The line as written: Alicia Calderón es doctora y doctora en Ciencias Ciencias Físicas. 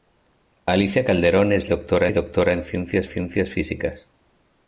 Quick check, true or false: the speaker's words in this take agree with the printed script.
true